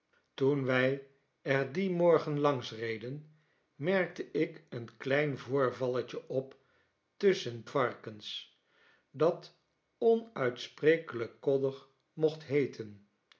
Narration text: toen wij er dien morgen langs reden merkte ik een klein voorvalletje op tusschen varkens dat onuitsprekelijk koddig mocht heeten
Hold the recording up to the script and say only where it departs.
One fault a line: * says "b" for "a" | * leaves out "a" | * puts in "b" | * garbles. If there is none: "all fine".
all fine